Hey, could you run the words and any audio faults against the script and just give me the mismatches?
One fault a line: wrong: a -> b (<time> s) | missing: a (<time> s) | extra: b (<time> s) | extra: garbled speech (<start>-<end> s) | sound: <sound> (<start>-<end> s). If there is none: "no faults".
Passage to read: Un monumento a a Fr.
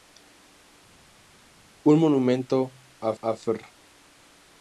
no faults